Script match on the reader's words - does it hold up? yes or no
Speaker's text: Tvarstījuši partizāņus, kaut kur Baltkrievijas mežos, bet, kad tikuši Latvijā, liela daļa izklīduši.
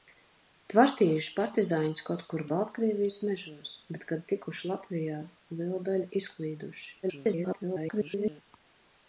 no